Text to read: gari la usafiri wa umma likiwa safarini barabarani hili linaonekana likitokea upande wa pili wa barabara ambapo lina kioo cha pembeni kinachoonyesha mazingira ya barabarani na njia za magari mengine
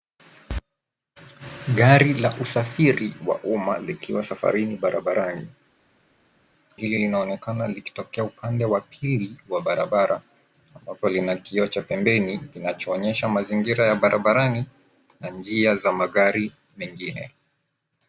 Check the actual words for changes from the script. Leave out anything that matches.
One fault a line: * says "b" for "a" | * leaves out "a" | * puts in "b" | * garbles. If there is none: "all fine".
all fine